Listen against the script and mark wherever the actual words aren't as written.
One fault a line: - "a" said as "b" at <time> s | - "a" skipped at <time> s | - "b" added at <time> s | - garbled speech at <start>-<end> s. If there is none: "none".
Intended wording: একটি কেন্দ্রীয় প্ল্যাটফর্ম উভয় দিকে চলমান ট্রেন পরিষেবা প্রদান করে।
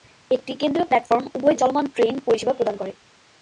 - "দিকে" skipped at 1.6 s